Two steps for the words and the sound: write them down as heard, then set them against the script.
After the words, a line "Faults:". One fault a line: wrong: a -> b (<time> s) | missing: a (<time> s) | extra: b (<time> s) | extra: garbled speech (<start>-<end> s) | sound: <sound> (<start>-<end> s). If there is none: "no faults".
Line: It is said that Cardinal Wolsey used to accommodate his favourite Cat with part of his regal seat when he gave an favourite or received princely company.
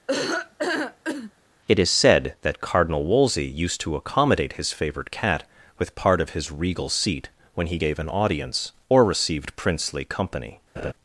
It is said that Cardinal Wolsey used to accommodate his favourite Cat with part of his regal seat when he gave an audience or received princely company.
Faults:
sound: laugh (0.1-1.3 s)
wrong: favourite -> audience (8.1 s)
sound: laugh (10.8-10.9 s)